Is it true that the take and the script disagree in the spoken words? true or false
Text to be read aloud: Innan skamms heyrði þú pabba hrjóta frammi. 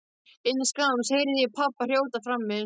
true